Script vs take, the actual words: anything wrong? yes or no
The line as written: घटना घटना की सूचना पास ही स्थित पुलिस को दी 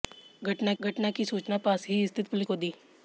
no